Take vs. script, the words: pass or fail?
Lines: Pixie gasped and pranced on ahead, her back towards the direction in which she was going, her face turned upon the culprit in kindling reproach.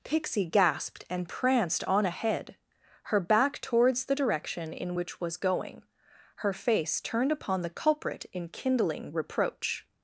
fail